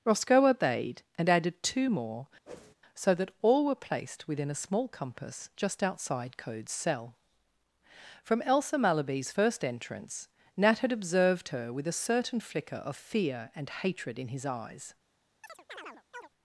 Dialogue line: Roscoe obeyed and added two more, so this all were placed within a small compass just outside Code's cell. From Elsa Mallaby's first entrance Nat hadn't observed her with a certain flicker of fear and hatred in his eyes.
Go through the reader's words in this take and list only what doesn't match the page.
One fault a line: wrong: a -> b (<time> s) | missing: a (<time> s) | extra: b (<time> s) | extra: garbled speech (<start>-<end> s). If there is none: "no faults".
wrong: this -> that (3.1 s)
wrong: hadn't -> had (10.8 s)